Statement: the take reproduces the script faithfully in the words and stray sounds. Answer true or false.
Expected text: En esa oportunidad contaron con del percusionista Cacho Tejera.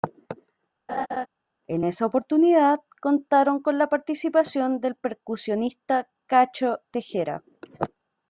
false